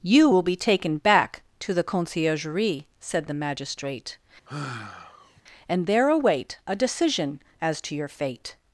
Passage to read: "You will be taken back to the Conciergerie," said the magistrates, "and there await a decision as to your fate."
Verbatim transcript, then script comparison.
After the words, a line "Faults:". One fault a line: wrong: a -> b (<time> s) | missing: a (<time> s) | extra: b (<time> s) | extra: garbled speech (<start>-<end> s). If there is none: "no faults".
"You will be taken back to the Conciergerie," said the magistrate, "and there await a decision as to your fate."
Faults:
wrong: magistrates -> magistrate (3.3 s)